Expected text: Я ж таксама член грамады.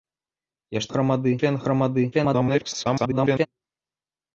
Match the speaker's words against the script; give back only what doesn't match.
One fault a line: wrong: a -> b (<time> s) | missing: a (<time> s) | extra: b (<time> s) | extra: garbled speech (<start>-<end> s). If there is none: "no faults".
wrong: таксама -> грамады (0.9 s)
extra: garbled speech (2.1-3.5 s)